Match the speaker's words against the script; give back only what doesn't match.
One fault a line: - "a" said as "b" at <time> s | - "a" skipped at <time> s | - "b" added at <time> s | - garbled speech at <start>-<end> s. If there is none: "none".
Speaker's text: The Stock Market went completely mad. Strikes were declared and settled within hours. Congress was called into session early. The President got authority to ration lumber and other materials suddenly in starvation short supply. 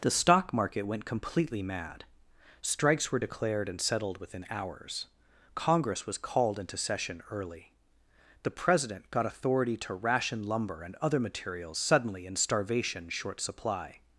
none